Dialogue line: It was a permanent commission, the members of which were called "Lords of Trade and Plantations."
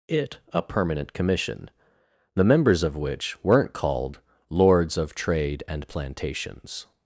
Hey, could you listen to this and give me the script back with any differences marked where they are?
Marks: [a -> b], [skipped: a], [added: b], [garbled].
It [skipped: was] a permanent commission, the members of which [were -> weren't] called "Lords of Trade and Plantations."